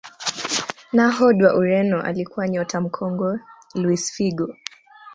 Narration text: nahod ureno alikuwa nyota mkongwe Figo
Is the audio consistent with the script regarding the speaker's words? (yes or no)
no